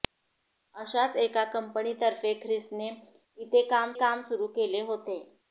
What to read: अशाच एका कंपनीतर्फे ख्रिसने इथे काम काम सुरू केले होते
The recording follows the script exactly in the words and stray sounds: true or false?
true